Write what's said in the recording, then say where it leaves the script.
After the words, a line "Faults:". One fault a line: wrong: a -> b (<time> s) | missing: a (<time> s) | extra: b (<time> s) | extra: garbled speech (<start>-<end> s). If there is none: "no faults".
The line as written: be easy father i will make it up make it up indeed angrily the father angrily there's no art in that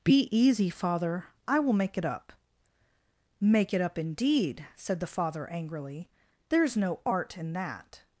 be easy father i will make it up make it up indeed said the father angrily there's no art in that
Faults:
wrong: angrily -> said (4.8 s)